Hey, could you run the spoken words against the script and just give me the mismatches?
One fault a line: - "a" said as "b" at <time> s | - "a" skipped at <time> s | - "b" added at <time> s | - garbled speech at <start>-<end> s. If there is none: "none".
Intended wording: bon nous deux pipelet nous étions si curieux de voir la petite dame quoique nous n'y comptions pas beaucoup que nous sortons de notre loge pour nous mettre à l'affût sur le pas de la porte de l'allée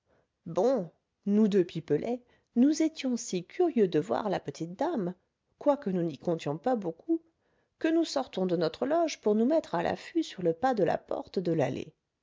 none